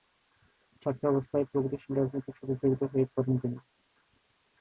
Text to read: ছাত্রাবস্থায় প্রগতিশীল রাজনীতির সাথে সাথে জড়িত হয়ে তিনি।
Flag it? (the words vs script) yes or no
yes